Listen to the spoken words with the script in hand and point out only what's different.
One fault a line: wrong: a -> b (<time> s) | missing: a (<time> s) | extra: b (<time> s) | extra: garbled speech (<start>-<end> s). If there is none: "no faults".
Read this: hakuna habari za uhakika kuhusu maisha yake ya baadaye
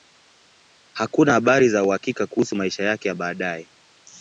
no faults